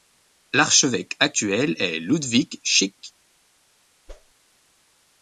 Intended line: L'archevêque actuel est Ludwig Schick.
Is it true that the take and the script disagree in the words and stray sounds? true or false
true